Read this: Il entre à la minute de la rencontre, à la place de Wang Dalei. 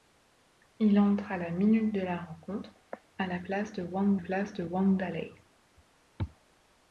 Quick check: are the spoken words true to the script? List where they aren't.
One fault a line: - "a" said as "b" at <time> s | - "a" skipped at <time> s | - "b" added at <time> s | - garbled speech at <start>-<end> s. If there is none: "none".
- "place de Wang" added at 4.2 s